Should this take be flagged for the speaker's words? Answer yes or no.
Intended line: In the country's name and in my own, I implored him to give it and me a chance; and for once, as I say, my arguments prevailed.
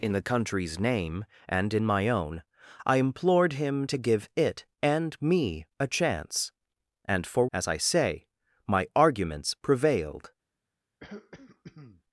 yes